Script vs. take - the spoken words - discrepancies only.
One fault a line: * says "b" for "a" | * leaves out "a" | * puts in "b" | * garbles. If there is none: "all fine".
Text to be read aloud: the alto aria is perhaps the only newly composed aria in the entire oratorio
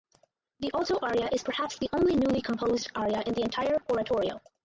all fine